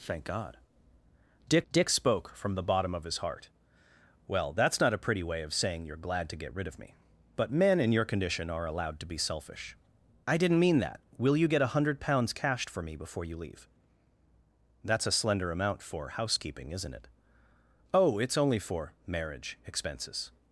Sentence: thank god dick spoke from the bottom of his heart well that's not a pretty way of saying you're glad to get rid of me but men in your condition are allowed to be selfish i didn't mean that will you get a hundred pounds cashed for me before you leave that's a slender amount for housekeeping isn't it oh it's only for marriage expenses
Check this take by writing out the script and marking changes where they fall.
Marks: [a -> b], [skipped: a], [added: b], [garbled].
thank god dick [added: dick] spoke from the bottom of his heart well that's not a pretty way of saying you're glad to get rid of me but men in your condition are allowed to be selfish i didn't mean that will you get a hundred pounds cashed for me before you leave that's a slender amount for housekeeping isn't it oh it's only for marriage expenses